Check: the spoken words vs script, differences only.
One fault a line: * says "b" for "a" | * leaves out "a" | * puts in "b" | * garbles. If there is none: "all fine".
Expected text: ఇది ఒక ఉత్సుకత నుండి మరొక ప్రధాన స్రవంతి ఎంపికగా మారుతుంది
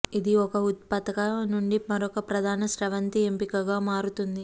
all fine